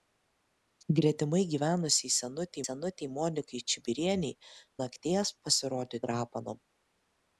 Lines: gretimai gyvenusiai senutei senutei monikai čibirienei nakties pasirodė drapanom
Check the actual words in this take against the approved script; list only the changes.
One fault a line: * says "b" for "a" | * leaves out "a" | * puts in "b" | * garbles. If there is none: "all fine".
all fine